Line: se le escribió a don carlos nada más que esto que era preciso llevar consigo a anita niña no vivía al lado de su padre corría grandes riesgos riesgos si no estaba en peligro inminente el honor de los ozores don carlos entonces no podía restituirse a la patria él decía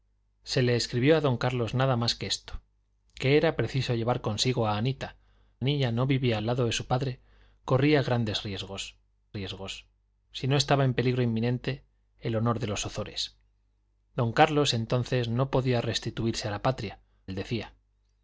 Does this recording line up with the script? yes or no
yes